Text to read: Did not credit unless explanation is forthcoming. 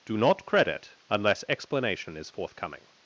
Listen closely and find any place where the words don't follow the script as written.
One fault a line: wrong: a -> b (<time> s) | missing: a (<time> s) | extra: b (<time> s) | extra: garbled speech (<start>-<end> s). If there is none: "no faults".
wrong: Did -> Do (0.0 s)